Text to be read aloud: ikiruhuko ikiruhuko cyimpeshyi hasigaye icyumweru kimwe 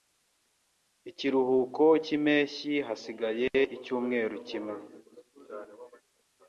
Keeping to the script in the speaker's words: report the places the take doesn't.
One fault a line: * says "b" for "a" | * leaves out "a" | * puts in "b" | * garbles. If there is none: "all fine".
* leaves out "ikiruhuko"